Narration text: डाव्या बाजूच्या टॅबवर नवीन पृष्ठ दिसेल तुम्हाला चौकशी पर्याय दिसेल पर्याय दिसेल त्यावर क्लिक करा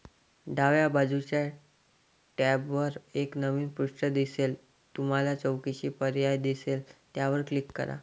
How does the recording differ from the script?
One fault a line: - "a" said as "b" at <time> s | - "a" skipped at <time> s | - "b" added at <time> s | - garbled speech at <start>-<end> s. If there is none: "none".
- "एक" added at 3.1 s
- "पर्याय दिसेल" skipped at 6.8 s